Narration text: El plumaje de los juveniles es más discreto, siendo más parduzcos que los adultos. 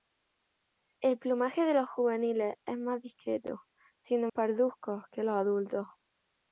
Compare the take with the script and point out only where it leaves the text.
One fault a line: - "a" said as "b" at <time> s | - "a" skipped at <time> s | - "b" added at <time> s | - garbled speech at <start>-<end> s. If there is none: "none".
- "más" skipped at 4.3 s